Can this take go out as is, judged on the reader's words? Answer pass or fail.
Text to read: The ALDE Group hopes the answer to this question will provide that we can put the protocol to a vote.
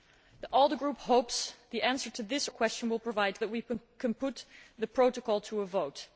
pass